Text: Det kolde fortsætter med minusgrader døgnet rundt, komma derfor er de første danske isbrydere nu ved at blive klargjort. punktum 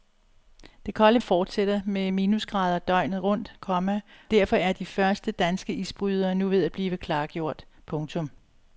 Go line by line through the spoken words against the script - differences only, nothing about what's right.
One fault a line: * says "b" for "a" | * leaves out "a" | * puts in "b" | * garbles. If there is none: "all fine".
all fine